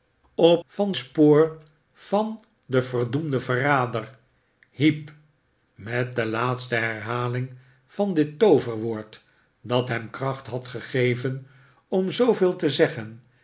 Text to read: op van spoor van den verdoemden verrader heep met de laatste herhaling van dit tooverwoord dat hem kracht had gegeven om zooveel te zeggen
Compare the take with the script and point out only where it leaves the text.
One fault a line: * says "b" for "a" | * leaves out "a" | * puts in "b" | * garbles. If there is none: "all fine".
all fine